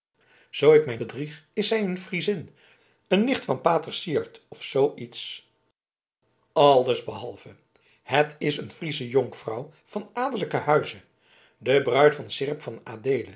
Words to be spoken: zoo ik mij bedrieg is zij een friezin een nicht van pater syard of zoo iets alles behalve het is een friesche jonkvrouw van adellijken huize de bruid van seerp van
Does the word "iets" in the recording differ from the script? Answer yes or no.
no